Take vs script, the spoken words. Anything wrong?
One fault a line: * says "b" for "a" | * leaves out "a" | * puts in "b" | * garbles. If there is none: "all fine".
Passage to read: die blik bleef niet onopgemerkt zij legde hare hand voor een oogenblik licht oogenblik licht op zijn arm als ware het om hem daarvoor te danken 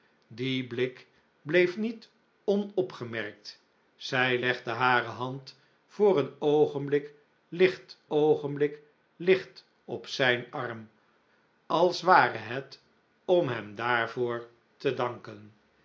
all fine